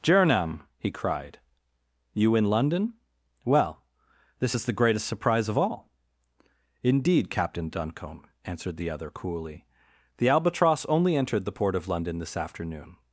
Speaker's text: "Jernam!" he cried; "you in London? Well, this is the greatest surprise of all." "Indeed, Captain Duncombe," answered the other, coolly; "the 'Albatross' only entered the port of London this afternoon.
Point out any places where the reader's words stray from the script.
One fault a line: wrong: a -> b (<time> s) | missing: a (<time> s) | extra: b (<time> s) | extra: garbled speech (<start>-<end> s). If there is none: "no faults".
no faults